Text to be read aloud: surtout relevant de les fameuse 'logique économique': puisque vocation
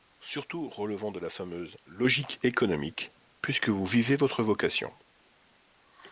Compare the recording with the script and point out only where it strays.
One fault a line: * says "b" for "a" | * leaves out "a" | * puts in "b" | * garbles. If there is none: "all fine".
* says "la" for "les"
* puts in "vous vivez votre"